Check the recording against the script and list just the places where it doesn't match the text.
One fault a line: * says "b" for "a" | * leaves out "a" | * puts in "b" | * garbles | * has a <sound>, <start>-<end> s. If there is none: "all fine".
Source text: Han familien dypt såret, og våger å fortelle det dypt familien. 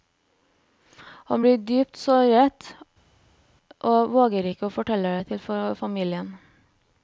* says "blir" for "familien"
* puts in "ikke"
* says "til" for "dypt"